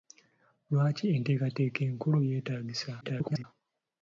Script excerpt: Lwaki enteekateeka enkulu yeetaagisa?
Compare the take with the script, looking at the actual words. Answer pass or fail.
fail